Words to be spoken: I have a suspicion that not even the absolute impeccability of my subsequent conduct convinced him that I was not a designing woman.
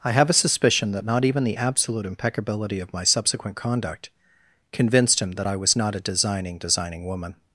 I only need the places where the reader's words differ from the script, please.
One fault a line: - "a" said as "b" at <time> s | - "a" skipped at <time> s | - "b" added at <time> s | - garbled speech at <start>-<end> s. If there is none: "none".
- "designing" added at 6.6 s